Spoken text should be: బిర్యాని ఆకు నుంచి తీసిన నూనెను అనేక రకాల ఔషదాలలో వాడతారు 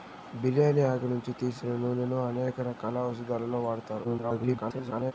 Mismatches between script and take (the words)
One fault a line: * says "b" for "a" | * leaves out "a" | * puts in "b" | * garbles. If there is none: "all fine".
* garbles